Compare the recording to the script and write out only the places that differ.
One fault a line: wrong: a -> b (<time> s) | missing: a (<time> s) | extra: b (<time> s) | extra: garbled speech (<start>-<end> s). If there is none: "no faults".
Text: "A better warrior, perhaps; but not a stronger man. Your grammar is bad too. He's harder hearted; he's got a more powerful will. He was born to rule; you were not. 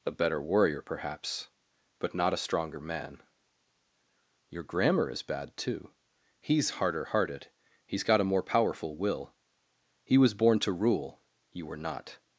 no faults